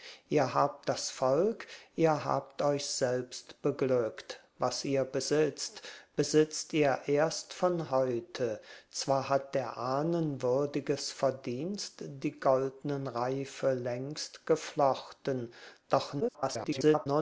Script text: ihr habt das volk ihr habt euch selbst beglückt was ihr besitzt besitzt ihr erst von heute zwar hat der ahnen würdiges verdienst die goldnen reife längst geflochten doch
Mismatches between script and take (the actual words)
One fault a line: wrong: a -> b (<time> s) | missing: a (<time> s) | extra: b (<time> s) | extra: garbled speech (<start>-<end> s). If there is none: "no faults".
extra: garbled speech (16.2-17.1 s)